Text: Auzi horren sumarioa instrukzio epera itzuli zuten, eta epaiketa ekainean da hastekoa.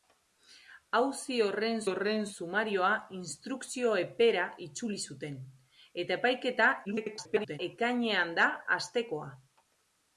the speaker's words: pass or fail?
fail